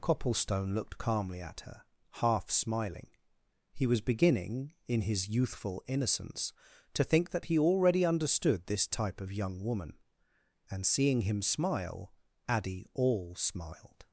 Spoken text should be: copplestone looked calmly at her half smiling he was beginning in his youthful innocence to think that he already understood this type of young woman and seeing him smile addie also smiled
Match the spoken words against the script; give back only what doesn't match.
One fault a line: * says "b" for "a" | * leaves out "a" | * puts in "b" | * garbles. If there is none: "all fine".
* says "all" for "also"